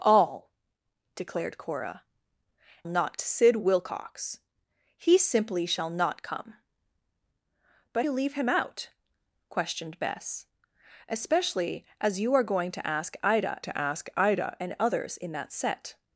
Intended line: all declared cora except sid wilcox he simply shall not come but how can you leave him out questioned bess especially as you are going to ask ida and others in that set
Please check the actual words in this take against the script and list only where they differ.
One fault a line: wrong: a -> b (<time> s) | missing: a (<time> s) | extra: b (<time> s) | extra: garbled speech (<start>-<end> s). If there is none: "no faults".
wrong: except -> not (2.8 s)
missing: how can (8.1 s)
extra: to ask ida (13.6 s)